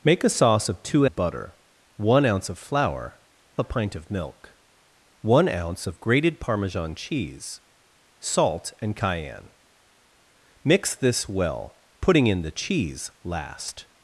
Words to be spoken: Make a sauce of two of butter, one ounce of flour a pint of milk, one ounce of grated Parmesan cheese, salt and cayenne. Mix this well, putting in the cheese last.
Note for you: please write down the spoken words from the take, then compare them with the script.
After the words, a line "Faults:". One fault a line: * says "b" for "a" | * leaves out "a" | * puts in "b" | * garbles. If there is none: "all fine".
Make a sauce of two of butter, one ounce of flour a pint of milk, one ounce of grated Parmesan cheese, salt and cayenne. Mix this well, putting in the cheese last.
Faults:
all fine